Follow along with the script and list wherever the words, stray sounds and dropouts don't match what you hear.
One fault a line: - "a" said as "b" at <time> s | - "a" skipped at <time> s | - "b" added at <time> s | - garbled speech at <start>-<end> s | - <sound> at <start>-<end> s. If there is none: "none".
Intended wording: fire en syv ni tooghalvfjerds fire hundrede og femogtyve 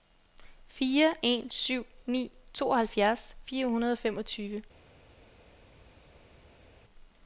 none